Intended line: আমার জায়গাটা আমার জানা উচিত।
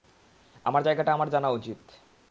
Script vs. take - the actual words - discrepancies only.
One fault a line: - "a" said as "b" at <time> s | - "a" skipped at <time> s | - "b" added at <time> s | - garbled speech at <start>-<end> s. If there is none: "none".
none